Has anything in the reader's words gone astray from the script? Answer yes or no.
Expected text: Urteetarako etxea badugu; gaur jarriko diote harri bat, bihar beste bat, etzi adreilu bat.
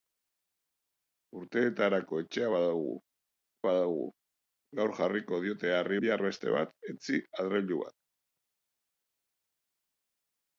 yes